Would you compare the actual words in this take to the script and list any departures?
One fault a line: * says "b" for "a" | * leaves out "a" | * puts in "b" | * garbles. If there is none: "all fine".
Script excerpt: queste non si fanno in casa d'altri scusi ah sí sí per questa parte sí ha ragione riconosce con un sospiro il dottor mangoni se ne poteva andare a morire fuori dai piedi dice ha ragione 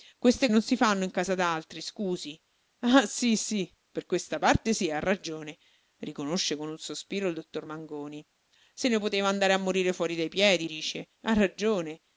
all fine